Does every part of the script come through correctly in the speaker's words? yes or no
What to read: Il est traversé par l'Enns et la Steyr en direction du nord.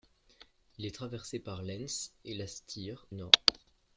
no